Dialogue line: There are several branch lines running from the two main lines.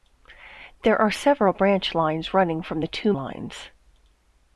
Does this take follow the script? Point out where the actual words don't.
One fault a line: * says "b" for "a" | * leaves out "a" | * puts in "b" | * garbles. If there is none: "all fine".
* leaves out "main"